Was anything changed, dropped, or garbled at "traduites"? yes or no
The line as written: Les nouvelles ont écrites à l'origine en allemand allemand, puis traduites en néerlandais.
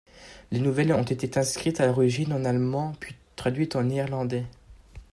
no